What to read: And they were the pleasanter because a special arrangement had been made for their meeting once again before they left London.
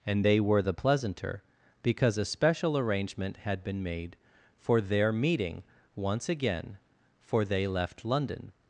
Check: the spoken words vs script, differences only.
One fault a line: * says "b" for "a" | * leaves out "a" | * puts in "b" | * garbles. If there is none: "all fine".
* says "for" for "before"